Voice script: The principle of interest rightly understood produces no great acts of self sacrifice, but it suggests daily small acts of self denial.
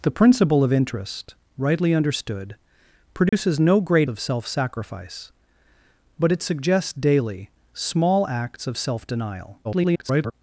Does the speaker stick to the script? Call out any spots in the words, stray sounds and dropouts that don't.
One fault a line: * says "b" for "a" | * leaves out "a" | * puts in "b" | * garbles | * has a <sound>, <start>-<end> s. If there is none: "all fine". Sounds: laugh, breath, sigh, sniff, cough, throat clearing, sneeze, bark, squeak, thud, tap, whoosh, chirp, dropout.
* has a dropout, 3.3-3.3 s
* leaves out "acts"
* garbles